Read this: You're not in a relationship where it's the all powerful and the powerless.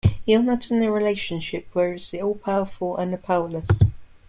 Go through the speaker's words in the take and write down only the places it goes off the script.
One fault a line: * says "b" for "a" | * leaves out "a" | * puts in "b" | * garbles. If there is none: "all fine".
all fine